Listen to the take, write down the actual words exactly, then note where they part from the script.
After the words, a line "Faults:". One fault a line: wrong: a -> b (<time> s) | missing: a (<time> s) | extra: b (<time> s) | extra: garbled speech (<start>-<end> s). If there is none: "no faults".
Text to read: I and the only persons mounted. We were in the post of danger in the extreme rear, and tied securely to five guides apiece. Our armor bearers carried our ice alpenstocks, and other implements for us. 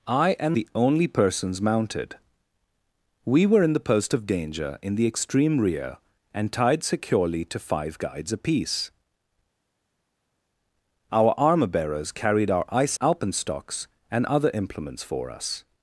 I and the only persons mounted. We were in the post of danger in the extreme rear, and tied securely to five guides apiece. Our armor bearers carried our ice alpenstocks, and other implements for us.
Faults:
no faults